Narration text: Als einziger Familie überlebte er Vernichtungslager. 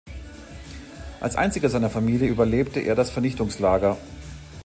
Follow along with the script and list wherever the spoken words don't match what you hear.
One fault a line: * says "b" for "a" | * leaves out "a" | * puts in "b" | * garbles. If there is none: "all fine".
* puts in "seiner"
* puts in "das"